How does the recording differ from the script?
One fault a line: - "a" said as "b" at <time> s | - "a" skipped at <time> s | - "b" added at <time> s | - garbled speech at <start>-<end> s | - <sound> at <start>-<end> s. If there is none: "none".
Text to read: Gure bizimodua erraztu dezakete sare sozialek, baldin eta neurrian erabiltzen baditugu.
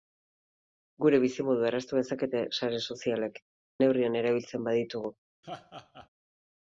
- "baldin eta" skipped at 3.4 s
- laugh at 5.4-6.1 s